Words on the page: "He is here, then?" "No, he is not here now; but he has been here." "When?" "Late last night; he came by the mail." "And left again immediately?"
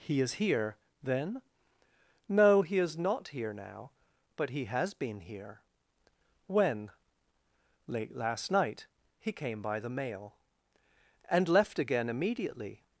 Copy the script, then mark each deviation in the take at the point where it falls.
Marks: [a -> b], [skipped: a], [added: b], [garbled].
"He is here, then?" "No, he is not here now; but he has been here." "When?" "Late last night; he came by the mail." "And left again immediately?"